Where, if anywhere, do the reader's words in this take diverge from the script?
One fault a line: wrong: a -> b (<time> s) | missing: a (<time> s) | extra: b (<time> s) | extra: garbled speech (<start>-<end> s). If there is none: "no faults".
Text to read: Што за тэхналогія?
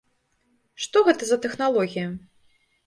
extra: гэта (1.1 s)